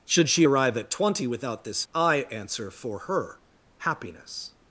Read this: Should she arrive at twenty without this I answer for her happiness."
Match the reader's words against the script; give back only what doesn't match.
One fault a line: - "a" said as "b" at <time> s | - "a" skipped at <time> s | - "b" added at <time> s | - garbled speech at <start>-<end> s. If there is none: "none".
none